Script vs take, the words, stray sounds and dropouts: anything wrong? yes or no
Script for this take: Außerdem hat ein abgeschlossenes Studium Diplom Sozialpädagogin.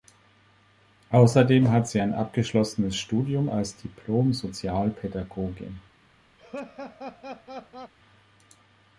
yes